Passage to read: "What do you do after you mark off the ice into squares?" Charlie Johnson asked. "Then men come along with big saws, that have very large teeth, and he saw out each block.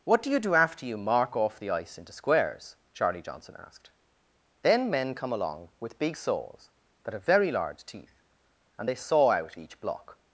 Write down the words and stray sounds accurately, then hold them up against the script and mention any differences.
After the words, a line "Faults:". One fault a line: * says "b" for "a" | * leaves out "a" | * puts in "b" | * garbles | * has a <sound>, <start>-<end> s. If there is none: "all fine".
"What do you do after you mark off the ice into squares?" Charlie Johnson asked. "Then men come along with big saws, that have very large teeth, and they saw out each block.
Faults:
* says "they" for "he"